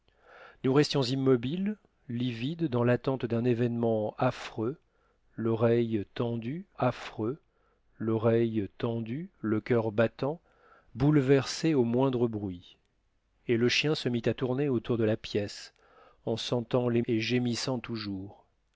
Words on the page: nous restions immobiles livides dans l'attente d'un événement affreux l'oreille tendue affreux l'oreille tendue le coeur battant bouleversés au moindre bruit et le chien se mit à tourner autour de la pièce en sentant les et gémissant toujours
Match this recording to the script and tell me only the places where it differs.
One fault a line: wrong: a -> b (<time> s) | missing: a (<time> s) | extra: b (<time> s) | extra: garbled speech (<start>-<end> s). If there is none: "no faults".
no faults